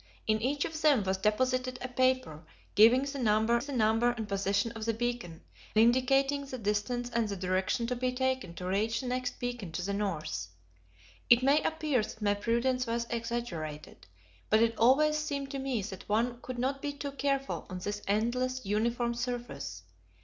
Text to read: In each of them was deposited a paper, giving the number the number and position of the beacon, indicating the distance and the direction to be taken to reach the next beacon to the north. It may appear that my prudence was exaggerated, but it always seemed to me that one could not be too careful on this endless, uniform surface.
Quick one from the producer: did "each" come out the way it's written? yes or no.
yes